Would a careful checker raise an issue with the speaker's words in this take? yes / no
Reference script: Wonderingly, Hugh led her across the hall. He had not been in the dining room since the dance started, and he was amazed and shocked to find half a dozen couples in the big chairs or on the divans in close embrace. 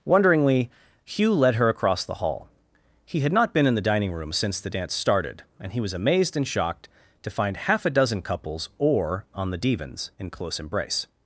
yes